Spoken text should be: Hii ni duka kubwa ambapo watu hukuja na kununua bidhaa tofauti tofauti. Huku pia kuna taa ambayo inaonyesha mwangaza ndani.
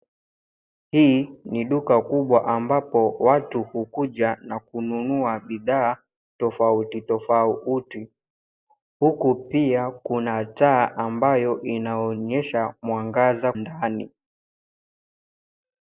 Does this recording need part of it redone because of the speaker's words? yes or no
no